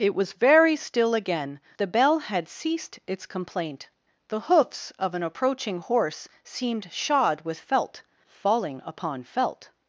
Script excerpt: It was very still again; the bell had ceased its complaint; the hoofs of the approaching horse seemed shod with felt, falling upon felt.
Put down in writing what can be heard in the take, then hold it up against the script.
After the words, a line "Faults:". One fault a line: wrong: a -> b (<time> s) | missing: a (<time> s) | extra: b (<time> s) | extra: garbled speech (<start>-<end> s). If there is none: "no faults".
It was very still again; the bell had ceased its complaint; the hoofs of an approaching horse seemed shod with felt, falling upon felt.
Faults:
wrong: the -> an (5.1 s)